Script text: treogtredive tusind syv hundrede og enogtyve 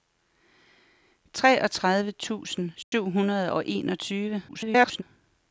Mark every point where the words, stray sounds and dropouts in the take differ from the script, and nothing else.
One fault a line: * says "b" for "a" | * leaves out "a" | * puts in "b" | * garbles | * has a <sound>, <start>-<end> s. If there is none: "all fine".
* has a dropout, 2.8-2.9 s
* garbles